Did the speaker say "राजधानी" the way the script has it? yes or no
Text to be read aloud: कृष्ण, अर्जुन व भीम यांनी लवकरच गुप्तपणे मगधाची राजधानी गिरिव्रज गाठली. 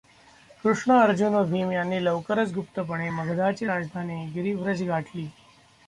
yes